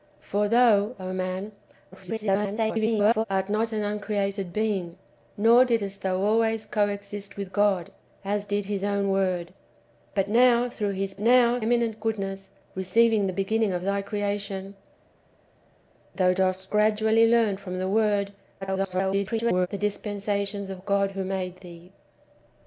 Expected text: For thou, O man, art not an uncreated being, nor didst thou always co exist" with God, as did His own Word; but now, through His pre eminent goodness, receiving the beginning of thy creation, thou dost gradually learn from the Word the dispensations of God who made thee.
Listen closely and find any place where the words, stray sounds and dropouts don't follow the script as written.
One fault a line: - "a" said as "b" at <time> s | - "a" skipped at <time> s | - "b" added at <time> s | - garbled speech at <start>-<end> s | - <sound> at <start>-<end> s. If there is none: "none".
- garbled speech at 1.9-3.2 s
- "pre" said as "now" at 11.2 s
- garbled speech at 18.6-19.7 s